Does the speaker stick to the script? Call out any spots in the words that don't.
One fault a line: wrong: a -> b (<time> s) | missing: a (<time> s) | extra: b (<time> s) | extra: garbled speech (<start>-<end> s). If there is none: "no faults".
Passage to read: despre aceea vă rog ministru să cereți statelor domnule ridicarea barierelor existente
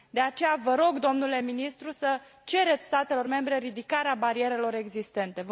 wrong: despre -> de (0.1 s)
extra: domnule (1.0 s)
wrong: domnule -> membre (3.3 s)